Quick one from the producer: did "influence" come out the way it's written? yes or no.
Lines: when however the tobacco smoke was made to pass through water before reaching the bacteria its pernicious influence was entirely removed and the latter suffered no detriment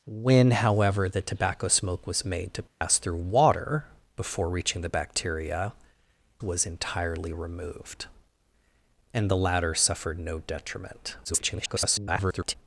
no